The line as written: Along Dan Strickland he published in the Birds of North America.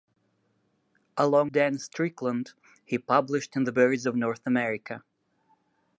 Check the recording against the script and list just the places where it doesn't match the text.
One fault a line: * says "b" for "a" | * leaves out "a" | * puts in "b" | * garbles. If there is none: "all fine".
all fine